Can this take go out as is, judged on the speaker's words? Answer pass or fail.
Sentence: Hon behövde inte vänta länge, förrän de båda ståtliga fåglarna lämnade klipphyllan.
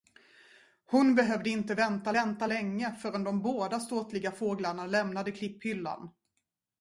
fail